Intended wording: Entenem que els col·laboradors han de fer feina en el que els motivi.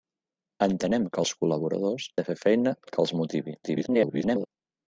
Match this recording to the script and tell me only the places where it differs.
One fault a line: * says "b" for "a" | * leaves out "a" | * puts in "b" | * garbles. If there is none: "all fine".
* leaves out "han"
* leaves out "en"
* garbles